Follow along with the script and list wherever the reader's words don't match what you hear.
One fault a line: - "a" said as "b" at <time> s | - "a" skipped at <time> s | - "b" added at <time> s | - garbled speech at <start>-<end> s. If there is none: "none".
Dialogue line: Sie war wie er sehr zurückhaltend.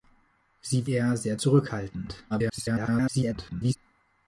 - "war wie" skipped at 0.9 s
- garbled speech at 2.3-3.8 s